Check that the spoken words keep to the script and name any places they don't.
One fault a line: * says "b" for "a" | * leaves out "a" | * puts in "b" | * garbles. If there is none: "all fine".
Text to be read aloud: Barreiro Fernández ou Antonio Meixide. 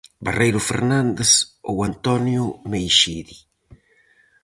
all fine